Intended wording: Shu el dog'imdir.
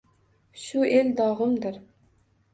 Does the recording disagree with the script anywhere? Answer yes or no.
no